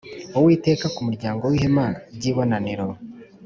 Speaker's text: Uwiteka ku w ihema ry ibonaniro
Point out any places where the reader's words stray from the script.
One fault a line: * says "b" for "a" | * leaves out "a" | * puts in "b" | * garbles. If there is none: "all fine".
* puts in "muryango"